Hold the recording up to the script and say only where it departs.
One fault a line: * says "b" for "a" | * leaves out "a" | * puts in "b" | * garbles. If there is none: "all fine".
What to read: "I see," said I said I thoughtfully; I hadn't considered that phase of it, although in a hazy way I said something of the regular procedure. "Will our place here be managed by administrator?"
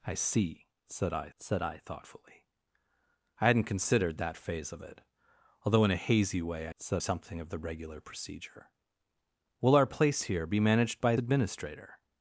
all fine